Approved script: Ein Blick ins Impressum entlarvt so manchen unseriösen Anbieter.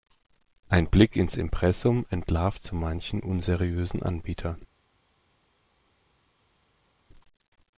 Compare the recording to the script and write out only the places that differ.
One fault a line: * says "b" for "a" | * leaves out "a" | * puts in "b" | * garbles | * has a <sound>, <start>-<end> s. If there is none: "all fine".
all fine